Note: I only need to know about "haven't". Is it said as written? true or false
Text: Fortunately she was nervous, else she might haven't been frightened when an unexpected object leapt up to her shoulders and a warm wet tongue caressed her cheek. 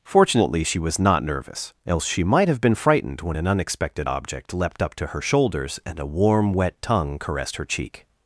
false